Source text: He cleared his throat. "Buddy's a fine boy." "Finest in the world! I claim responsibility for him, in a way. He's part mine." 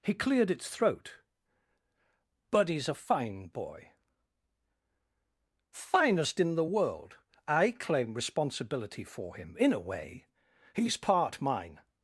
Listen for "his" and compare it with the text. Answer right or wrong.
wrong